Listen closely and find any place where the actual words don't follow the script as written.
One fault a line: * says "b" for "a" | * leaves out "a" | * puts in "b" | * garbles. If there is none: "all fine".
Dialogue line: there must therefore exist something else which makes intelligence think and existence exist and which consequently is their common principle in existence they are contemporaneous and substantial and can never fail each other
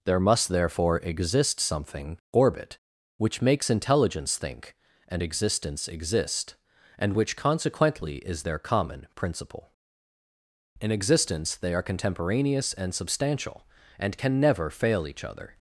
* says "orbit" for "else"